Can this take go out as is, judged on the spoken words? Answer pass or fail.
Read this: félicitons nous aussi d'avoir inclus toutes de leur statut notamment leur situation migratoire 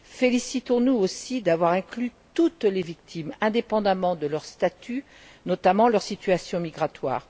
fail